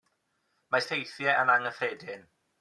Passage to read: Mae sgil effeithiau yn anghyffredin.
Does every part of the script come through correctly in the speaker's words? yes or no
no